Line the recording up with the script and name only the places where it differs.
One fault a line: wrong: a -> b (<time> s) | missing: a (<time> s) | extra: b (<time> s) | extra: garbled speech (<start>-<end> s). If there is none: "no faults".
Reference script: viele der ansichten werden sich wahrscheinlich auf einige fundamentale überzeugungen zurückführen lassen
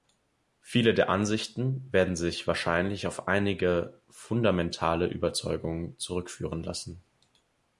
no faults